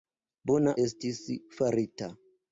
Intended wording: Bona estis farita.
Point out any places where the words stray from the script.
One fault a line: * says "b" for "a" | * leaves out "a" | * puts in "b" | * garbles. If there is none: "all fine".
all fine